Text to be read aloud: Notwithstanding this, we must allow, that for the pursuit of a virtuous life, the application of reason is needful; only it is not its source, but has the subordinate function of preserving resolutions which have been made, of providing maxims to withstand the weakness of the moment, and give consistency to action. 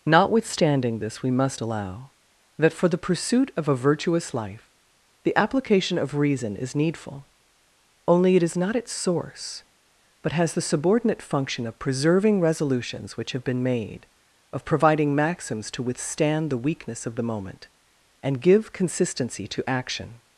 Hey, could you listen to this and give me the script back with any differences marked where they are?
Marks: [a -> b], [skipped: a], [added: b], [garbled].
Notwithstanding this, we must allow, that for the pursuit of a virtuous life, the application of reason is needful; only it is not its source, but has the subordinate function of preserving resolutions which have been made, of providing maxims to withstand the weakness of the moment, and give consistency to action.